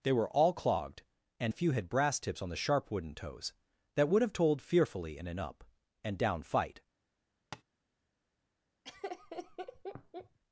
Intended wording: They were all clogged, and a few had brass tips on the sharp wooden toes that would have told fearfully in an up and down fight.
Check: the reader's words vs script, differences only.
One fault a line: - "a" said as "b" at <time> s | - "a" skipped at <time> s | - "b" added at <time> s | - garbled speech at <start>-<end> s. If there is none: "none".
none